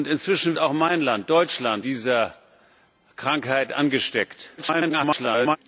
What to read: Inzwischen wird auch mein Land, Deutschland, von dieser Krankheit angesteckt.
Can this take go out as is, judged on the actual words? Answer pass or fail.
fail